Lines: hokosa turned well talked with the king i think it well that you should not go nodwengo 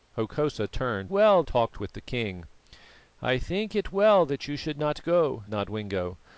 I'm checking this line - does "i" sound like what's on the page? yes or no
yes